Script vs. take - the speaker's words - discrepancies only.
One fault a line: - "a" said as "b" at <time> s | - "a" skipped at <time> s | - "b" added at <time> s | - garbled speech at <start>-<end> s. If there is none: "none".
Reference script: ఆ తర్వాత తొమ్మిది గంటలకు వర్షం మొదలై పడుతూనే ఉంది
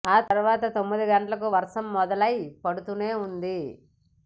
none